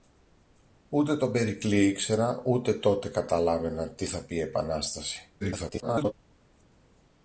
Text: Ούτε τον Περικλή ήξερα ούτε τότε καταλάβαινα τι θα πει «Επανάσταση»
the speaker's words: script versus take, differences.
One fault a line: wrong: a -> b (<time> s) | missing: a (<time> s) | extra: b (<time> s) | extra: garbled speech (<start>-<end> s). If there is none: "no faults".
extra: garbled speech (5.4-6.1 s)